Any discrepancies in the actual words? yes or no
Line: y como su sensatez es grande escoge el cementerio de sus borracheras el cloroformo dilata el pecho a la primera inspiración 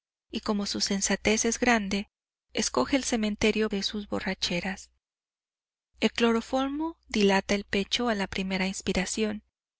no